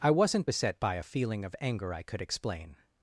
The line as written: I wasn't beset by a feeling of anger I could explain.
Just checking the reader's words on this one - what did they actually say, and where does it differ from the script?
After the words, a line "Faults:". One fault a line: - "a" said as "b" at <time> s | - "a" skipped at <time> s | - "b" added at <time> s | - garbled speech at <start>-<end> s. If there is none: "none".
I wasn't beset by a feeling of anger I could explain.
Faults:
none